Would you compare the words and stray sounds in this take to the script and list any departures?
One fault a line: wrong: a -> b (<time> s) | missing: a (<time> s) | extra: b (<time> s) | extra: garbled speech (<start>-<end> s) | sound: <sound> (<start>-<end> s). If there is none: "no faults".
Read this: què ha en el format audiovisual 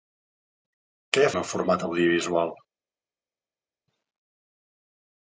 no faults